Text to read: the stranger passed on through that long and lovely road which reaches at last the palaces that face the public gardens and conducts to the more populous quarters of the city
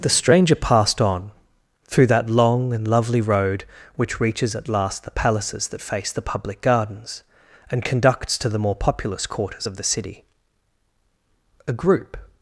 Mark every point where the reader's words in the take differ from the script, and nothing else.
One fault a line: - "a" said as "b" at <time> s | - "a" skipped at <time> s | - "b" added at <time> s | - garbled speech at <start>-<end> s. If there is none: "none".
- "a group" added at 11.7 s